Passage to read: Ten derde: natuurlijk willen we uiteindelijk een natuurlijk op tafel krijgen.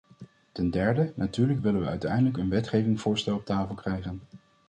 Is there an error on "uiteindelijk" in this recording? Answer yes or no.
no